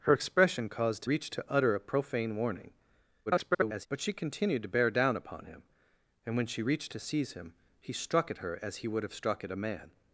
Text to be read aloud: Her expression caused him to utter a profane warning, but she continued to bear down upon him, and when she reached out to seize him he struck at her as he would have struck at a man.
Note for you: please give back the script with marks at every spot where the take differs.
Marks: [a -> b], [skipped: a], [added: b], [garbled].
Her expression caused [him -> reached] to utter a profane warning, [garbled] but she continued to bear down upon him, and when she reached [skipped: out] to seize him he struck at her as he would have struck at a man.